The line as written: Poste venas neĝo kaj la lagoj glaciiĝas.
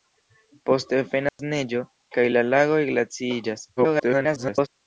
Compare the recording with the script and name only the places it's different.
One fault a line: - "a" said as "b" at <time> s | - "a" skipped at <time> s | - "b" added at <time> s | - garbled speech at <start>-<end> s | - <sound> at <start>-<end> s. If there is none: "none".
- dropout at 1.3-1.4 s
- garbled speech at 3.8-4.7 s